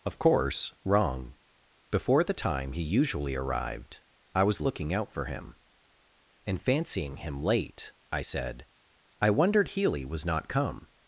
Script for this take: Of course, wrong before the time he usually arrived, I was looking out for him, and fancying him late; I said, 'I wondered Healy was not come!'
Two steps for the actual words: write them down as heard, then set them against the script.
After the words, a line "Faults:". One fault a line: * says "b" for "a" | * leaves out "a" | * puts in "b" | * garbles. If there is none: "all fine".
Of course, wrong before the time he usually arrived, I was looking out for him, and fancying him late; I said, 'I wondered Healy was not come!'
Faults:
all fine